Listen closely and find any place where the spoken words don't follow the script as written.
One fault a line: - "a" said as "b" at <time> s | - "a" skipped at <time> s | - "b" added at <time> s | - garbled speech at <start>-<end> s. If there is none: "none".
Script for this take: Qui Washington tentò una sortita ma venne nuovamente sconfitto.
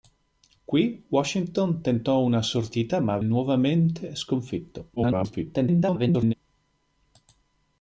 - "venne" skipped at 3.2 s
- garbled speech at 5.0-6.3 s